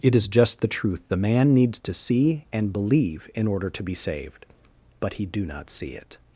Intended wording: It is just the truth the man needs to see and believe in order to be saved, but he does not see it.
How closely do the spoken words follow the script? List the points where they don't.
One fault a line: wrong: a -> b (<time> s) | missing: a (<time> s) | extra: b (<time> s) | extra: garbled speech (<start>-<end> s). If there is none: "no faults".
wrong: does -> do (5.2 s)